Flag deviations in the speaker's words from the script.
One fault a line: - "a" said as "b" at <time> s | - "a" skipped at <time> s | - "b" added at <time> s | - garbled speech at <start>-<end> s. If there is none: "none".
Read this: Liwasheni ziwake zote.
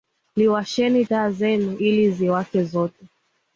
- "taa zenu ili" added at 1.0 s